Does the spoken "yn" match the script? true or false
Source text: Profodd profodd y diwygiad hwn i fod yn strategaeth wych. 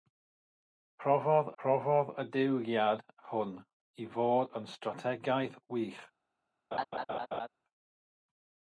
true